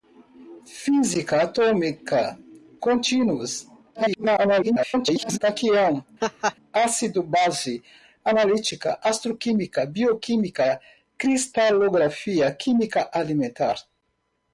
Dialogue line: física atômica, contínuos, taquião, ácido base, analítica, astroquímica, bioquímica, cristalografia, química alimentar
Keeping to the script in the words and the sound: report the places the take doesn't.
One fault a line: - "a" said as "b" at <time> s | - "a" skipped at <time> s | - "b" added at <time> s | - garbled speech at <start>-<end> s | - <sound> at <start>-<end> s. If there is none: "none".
- garbled speech at 3.9-5.4 s
- laugh at 6.2-6.6 s